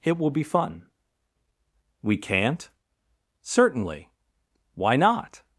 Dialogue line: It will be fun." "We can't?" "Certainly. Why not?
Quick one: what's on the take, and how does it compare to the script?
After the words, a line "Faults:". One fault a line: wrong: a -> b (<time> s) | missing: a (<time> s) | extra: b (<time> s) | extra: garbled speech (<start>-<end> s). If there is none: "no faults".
It will be fun." "We can't?" "Certainly. Why not?
Faults:
no faults